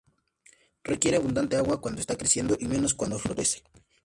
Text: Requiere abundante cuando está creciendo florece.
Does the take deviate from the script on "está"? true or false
false